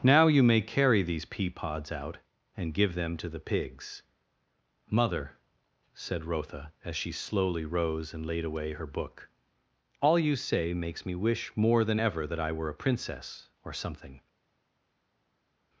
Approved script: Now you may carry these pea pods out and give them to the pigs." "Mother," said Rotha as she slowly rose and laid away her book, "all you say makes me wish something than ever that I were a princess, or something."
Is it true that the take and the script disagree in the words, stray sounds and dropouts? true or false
true